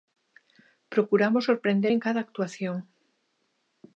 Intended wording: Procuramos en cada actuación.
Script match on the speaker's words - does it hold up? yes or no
no